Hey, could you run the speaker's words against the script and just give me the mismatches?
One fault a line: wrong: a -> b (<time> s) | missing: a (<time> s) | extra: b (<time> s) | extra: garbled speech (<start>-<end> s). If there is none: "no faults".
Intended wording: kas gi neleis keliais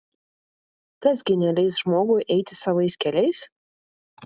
extra: žmogui eiti savais (1.8 s)